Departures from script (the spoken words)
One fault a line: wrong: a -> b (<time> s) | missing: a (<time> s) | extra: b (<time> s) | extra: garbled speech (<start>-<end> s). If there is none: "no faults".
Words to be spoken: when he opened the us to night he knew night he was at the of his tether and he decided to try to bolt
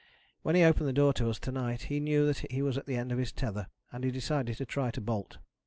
extra: door to (0.9 s)
wrong: night -> that (2.2 s)
extra: end (3.0 s)